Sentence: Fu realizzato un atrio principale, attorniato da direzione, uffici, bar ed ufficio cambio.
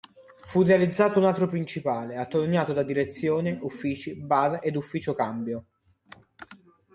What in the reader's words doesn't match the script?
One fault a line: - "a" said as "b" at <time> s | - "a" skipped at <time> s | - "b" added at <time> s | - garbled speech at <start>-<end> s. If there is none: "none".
none